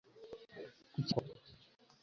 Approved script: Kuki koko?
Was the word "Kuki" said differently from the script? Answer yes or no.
no